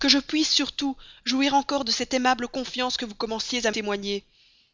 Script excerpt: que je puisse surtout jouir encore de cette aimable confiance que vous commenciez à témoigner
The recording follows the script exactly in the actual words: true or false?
true